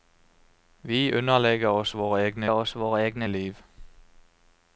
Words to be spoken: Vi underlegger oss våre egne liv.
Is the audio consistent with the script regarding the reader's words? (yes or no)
no